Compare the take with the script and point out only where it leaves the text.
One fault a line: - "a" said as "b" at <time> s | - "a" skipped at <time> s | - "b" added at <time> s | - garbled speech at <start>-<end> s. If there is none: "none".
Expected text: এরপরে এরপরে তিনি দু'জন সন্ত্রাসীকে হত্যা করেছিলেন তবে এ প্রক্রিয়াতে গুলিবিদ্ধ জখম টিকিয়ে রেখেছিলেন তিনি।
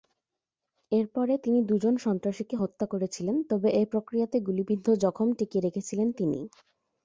- "এরপরে" skipped at 1.3 s